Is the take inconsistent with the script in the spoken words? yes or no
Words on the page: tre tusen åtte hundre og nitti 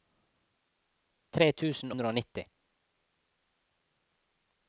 yes